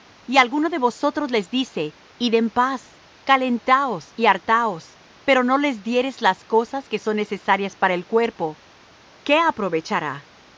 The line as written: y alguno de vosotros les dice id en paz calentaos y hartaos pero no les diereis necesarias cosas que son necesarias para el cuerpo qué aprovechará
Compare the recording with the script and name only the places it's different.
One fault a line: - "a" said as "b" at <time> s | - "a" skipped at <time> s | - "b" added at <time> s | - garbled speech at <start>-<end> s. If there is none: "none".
- "necesarias" said as "las" at 6.2 s